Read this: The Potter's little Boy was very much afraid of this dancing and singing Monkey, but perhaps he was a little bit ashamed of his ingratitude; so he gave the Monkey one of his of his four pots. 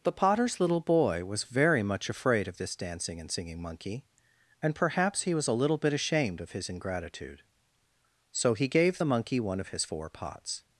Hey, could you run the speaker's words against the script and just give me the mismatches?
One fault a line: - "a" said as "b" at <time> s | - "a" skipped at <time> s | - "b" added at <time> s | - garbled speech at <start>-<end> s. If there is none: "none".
- "but" said as "and" at 4.6 s
- "of his" skipped at 9.8 s